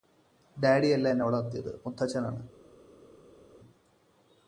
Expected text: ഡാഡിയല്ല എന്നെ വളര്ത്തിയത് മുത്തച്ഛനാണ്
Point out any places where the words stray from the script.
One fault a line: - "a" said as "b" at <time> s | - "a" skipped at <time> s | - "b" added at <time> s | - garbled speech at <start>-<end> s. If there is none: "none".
none